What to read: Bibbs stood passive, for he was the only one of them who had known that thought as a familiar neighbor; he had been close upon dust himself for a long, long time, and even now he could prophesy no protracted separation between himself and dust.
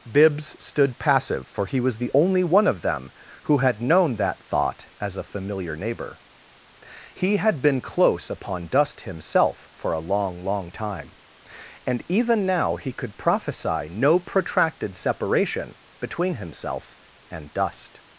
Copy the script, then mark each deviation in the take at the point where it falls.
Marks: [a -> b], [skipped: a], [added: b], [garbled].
Bibbs stood passive, for he was the only one of them who had known that thought as a familiar neighbor; he had been close upon dust himself for a long, long time, and even now he could prophesy no protracted separation between himself and dust.